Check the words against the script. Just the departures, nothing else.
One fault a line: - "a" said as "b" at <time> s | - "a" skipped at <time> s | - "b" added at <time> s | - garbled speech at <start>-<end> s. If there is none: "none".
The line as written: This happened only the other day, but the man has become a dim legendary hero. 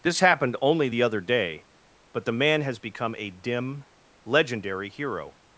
none